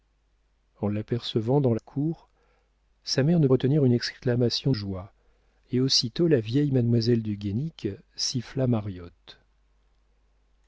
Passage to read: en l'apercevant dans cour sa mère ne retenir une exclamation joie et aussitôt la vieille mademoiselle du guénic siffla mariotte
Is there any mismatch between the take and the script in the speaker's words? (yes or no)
no